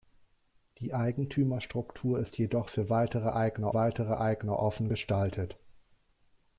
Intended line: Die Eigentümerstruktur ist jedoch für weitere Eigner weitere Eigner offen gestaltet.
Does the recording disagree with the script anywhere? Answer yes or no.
no